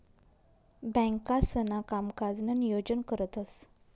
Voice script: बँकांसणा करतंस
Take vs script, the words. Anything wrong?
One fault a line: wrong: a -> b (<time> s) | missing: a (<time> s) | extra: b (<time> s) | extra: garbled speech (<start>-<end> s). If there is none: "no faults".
extra: कामकाजनं नियोजन (1.8 s)